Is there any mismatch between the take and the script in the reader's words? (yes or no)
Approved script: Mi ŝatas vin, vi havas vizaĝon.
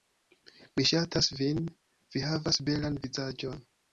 yes